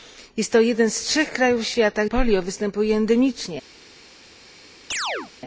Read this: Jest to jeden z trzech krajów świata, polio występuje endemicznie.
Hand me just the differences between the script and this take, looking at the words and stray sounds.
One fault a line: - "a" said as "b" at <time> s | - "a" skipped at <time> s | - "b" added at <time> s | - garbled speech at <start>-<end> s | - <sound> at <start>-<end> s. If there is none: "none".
- chirp at 4.9-5.3 s